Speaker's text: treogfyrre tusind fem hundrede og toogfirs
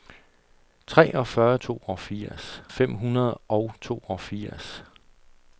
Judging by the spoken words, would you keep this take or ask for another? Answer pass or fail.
fail